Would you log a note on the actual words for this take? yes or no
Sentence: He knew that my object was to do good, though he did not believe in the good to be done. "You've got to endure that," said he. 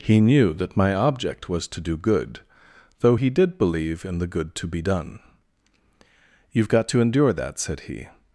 yes